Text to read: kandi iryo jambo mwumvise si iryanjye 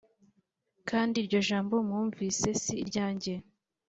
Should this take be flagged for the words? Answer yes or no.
no